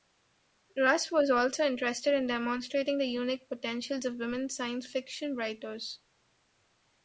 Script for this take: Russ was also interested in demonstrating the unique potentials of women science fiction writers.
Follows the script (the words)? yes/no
yes